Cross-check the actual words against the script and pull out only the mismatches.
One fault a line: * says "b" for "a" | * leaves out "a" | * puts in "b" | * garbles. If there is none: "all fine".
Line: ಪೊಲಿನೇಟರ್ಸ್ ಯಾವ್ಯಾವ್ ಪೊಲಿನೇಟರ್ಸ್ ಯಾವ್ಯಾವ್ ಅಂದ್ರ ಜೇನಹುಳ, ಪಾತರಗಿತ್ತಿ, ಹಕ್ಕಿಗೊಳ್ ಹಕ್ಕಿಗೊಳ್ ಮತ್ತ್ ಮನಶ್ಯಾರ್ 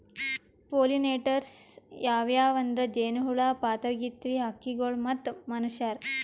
* leaves out "ಪೊಲಿನೇಟರ್ಸ್ ಯಾವ್ಯಾವ್"
* leaves out "ಹಕ್ಕಿಗೊಳ್"